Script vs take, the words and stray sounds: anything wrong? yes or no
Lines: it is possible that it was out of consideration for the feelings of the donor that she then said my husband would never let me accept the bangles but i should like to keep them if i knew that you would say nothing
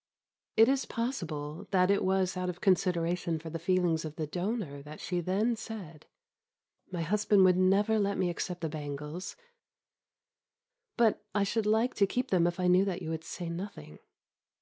no